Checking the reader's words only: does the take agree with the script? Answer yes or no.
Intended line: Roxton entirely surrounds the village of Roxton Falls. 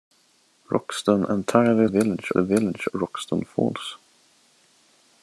no